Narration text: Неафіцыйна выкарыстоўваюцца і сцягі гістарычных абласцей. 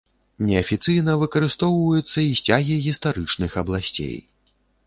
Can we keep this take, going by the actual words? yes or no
yes